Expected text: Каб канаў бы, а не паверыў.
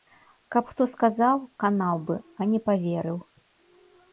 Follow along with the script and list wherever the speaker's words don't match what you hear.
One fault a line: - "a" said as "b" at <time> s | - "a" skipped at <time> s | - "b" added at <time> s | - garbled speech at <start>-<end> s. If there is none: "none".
- "хто сказаў" added at 0.7 s